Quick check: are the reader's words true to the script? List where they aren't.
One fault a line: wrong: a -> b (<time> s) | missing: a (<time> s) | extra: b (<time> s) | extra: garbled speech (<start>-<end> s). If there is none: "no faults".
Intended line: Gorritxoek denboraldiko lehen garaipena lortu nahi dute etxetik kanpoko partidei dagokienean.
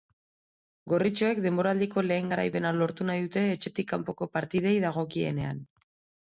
no faults